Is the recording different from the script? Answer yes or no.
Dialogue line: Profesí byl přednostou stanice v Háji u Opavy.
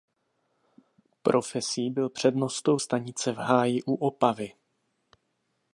no